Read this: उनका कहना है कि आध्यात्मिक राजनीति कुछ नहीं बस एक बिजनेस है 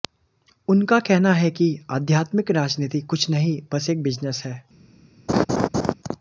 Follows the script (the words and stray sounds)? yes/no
no